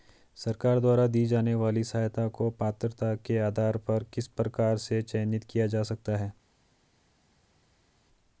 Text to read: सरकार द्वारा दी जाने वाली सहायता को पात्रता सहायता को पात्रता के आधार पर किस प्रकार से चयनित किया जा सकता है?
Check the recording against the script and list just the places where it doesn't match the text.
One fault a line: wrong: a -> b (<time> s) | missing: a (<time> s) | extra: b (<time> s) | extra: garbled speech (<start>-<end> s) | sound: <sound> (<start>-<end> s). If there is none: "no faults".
missing: सहायता को पात्रता (3.1 s)